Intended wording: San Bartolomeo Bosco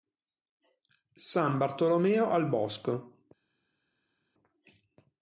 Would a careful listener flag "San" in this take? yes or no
no